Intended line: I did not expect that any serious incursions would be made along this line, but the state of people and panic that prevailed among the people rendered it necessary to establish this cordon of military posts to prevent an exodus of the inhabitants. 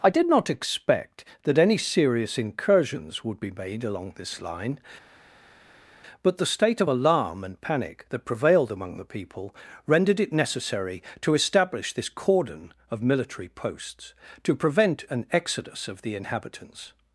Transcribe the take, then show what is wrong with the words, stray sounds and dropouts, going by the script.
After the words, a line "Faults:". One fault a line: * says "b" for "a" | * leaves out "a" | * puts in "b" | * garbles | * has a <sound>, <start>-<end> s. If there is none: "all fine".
I did not expect that any serious incursions would be made along this line, but the state of alarm and panic that prevailed among the people rendered it necessary to establish this cordon of military posts to prevent an exodus of the inhabitants.
Faults:
* says "alarm" for "people"